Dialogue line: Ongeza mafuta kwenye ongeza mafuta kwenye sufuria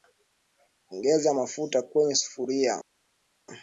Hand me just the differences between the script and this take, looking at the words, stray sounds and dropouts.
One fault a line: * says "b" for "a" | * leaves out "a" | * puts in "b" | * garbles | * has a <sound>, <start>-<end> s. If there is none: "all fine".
* leaves out "ongeza mafuta kwenye"